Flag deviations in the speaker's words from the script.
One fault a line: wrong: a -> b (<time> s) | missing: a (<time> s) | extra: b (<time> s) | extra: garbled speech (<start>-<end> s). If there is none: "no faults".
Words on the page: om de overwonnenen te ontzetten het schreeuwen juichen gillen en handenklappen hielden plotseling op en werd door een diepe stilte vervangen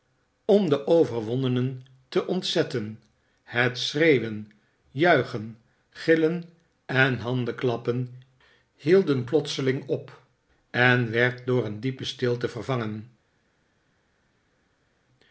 no faults